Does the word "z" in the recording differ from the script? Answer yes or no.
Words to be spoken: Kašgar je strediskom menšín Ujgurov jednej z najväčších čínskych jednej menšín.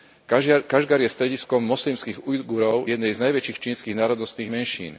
no